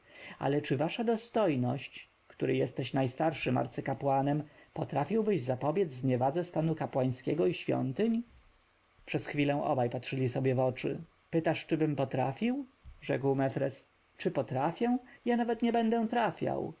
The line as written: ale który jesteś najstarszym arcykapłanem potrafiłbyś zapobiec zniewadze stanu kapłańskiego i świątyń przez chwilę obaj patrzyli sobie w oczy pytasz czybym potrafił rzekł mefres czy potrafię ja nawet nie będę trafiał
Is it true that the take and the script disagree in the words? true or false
true